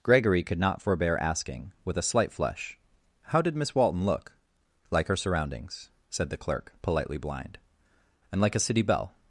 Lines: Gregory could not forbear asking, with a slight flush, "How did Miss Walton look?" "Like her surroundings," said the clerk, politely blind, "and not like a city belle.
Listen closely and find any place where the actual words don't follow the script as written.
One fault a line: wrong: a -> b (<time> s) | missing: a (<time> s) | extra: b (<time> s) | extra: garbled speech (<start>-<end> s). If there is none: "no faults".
missing: not (8.4 s)